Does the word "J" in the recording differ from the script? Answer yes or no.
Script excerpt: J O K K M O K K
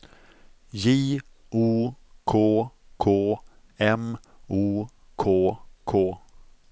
no